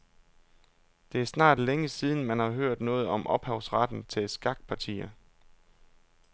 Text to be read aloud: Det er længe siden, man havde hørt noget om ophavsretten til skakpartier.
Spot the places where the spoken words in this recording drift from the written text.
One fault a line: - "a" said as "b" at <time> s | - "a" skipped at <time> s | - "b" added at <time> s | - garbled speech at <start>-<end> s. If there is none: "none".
- "snart" added at 1.2 s
- "havde" said as "har" at 2.4 s